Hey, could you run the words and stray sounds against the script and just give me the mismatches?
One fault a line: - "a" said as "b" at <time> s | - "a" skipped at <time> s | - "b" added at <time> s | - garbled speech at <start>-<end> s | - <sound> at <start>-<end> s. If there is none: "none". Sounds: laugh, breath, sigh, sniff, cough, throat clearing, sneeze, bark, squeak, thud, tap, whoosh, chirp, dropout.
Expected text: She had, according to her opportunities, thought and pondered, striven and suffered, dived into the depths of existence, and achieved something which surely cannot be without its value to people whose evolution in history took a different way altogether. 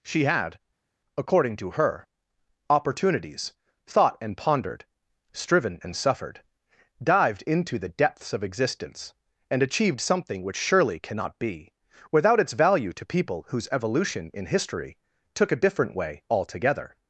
none